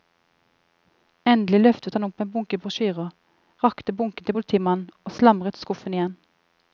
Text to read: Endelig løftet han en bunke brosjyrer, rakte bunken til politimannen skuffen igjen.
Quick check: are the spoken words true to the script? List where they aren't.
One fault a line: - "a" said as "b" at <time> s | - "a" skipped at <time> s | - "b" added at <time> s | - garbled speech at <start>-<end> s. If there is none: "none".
- "opp" added at 2.1 s
- "og slamret" added at 5.0 s